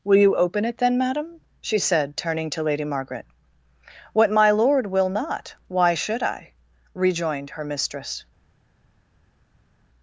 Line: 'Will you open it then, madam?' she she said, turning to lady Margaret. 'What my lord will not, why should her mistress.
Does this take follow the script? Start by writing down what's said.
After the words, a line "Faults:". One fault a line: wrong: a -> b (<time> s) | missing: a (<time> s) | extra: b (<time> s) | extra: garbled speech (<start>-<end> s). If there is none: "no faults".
'Will you open it then, madam?' she said, turning to lady Margaret. 'What my lord will not, why should I?' rejoined her mistress.
Faults:
missing: she (1.8 s)
extra: I rejoined (6.2 s)